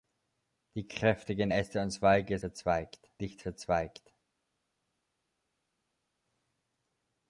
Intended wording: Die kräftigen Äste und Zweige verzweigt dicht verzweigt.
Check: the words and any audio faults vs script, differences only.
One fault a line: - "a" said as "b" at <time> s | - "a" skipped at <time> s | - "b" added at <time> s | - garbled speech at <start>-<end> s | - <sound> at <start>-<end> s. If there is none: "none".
none